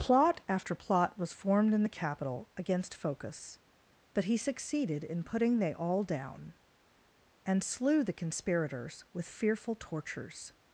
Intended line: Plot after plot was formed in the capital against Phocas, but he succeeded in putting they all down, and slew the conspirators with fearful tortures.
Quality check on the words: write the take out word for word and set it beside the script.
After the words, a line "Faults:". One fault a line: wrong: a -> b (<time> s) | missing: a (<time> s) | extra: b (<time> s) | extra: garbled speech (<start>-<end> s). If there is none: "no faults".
Plot after plot was formed in the capital against Phocas, but he succeeded in putting they all down, and slew the conspirators with fearful tortures.
Faults:
no faults